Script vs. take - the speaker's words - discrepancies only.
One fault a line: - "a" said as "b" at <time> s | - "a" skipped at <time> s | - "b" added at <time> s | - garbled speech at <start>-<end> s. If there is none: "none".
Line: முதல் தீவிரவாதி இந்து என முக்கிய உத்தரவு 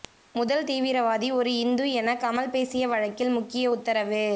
- "ஒரு" added at 1.3 s
- "கமல் பேசிய வழக்கில்" added at 2.1 s